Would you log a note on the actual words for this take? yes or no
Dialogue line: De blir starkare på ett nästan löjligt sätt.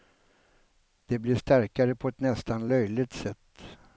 no